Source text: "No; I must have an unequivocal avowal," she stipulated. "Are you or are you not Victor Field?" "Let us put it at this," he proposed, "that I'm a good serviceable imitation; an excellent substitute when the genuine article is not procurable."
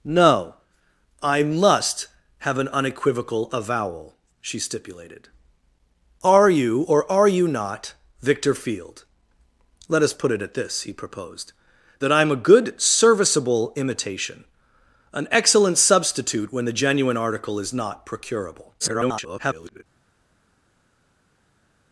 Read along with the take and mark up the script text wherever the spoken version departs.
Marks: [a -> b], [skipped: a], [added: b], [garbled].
"No; I must have an unequivocal avowal," she stipulated. "Are you or are you not Victor Field?" "Let us put it at this," he proposed, "that I'm a good serviceable imitation; an excellent substitute when the genuine article is not procurable." [garbled]